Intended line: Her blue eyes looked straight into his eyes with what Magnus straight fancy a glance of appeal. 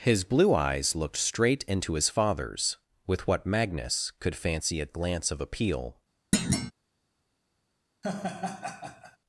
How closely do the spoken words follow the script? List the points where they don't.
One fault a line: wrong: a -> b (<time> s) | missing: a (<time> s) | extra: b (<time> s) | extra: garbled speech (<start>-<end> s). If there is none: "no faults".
wrong: Her -> His (0.0 s)
wrong: eyes -> father's (2.1 s)
wrong: straight -> could (4.2 s)